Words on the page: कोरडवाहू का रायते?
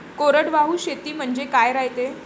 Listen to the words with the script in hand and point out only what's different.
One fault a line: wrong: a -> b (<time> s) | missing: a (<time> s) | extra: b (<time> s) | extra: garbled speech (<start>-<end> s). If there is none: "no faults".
extra: शेती म्हनजे (0.8 s)